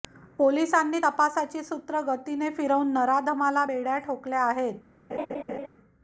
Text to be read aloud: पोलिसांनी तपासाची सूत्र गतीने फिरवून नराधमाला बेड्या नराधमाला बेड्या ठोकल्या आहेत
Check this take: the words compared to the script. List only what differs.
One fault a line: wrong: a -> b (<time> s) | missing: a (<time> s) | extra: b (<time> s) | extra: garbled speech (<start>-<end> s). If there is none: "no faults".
missing: नराधमाला बेड्या (4.0 s)